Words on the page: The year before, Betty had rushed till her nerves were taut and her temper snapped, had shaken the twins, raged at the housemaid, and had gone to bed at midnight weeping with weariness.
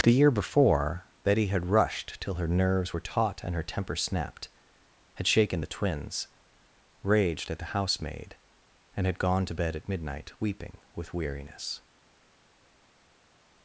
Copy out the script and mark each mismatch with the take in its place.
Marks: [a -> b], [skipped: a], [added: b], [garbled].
The year before, Betty had rushed till her nerves were taut and her temper snapped, had shaken the twins, raged at the housemaid, and had gone to bed at midnight weeping with weariness.